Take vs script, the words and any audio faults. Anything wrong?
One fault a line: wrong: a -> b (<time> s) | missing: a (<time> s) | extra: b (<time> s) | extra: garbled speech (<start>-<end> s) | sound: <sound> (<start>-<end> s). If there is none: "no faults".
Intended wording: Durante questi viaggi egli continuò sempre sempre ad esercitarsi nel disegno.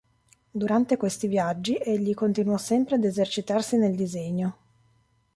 missing: sempre (3.0 s)